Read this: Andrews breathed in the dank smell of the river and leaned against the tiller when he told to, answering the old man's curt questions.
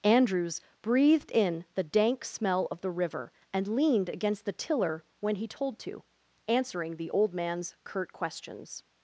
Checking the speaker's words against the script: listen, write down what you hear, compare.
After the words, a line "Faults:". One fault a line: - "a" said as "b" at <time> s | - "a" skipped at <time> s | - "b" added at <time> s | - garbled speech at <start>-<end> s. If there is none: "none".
Andrews breathed in the dank smell of the river and leaned against the tiller when he told to, answering the old man's curt questions.
Faults:
none